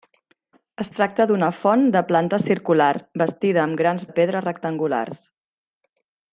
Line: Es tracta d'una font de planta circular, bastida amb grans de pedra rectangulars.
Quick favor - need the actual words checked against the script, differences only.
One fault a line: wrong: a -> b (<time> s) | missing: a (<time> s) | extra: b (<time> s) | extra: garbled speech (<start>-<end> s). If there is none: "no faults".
no faults